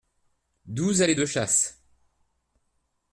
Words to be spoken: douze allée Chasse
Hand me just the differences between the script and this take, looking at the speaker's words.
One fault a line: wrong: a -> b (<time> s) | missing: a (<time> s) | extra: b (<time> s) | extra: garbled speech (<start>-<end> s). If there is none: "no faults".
extra: de (1.1 s)